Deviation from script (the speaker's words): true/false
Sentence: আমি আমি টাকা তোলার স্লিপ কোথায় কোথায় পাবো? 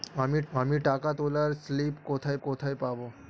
false